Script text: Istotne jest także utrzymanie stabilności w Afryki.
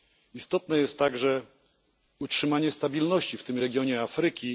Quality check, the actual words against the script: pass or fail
fail